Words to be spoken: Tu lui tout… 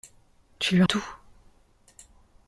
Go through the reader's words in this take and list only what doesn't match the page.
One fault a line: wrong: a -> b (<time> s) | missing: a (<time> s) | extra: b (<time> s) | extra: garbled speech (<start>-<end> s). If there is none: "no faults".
no faults